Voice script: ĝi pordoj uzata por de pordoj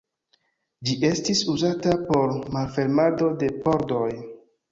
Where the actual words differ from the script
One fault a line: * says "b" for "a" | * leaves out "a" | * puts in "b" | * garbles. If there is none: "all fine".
* says "estis" for "pordoj"
* puts in "malfermado"